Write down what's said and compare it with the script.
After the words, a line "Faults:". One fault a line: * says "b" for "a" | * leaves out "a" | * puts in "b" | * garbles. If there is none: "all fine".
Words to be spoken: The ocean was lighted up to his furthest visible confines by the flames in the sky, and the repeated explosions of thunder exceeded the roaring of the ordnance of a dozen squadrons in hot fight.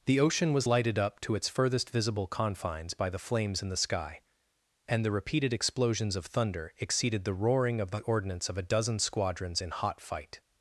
The ocean was lighted up to its furthest visible confines by the flames in the sky, and the repeated explosions of thunder exceeded the roaring of the ordnance of a dozen squadrons in hot fight.
Faults:
* says "its" for "his"